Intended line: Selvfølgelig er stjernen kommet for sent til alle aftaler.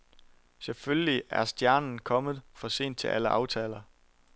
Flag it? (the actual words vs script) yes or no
no